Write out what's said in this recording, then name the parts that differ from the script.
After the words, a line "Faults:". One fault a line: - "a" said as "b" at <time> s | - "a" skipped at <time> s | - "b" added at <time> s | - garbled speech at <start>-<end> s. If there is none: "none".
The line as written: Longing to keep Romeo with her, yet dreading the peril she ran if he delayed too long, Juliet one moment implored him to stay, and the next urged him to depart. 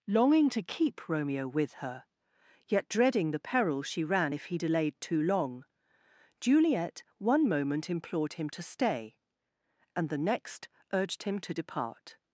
Longing to keep Romeo with her, yet dreading the peril she ran if he delayed too long, Juliet one moment implored him to stay, and the next urged him to depart.
Faults:
none